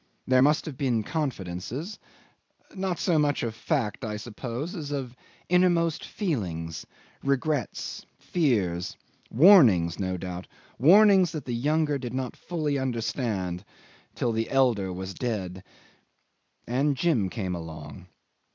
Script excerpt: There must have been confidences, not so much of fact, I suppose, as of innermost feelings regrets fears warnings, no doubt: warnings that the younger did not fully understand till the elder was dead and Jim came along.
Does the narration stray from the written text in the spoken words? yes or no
no